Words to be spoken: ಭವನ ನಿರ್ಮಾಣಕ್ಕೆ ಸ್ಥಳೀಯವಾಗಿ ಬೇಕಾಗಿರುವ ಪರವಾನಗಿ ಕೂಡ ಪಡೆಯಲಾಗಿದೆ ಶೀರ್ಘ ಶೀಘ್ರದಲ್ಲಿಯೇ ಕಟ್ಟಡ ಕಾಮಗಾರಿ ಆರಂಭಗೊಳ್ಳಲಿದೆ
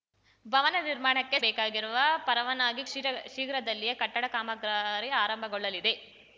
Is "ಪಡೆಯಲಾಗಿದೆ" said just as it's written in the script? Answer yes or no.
no